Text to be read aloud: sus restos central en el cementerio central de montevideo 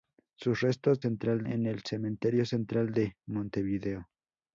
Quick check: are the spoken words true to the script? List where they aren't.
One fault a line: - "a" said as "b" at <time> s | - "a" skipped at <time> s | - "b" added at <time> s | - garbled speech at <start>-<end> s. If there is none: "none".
none